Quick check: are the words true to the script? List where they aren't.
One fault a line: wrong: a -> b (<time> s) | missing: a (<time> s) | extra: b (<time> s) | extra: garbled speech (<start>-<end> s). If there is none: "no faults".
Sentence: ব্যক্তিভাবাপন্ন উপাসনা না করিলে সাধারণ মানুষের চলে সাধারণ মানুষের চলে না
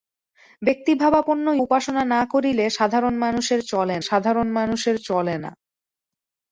no faults